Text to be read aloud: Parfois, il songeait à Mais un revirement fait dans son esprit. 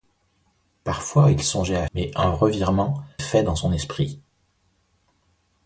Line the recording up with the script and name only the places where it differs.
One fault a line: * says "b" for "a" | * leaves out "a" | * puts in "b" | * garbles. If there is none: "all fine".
all fine